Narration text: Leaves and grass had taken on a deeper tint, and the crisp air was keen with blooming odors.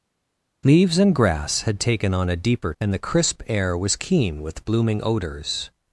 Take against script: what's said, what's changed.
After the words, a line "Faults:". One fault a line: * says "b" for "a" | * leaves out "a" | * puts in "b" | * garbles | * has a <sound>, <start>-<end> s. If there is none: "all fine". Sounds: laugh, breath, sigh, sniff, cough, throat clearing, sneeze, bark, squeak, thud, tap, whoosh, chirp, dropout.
Leaves and grass had taken on a deeper and the crisp air was keen with blooming odors.
Faults:
* leaves out "tint"